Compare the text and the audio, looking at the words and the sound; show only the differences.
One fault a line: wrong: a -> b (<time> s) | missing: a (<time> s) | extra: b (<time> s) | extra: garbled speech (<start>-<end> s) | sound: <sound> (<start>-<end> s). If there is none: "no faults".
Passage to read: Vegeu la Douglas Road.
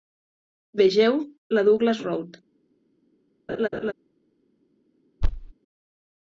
sound: laugh (3.5-3.9 s)
sound: thud (5.2-5.5 s)